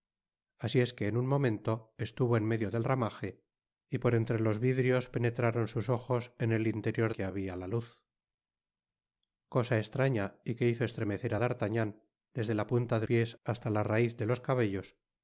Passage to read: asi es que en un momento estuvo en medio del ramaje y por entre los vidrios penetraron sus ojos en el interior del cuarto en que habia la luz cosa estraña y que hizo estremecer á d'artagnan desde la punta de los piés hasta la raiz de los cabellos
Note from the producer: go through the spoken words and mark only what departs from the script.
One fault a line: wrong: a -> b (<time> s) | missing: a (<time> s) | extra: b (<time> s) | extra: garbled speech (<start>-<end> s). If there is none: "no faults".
missing: del cuarto en (7.1 s)
missing: los (13.1 s)